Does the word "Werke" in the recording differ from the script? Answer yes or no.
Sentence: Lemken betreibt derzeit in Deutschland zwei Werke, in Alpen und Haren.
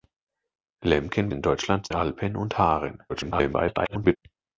yes